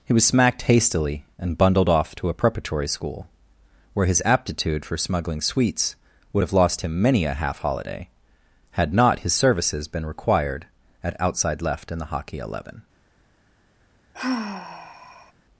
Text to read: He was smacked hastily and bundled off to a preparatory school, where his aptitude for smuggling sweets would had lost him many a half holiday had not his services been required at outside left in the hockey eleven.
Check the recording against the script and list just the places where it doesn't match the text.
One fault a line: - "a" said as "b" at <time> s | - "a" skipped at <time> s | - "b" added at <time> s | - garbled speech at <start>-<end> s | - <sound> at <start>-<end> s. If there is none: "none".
- "had" said as "have" at 6.4 s
- sigh at 14.1-15.3 s